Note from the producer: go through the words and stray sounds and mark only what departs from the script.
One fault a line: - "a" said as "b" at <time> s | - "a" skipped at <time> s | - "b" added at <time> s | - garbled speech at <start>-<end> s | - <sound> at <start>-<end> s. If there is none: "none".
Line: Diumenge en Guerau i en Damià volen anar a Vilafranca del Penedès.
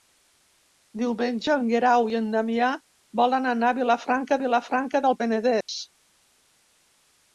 - "Vilafranca" added at 4.4 s
- dropout at 5.6-5.7 s